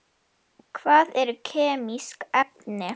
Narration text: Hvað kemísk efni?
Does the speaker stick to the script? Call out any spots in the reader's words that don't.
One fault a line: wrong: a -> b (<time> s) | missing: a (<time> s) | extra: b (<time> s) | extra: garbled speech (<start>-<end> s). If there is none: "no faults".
extra: eru (1.2 s)